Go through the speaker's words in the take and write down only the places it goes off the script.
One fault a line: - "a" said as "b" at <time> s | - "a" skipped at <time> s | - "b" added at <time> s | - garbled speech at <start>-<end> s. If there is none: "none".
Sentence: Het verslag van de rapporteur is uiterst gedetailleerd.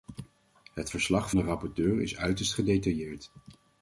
- "van" skipped at 1.3 s